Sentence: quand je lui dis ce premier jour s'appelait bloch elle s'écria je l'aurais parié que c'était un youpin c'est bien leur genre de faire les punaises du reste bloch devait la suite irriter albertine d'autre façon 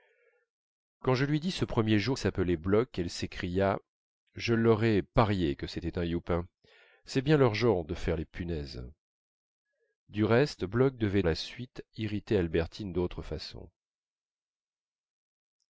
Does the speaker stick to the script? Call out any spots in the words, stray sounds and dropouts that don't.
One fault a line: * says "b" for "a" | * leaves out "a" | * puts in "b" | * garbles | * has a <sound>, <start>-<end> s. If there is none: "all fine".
all fine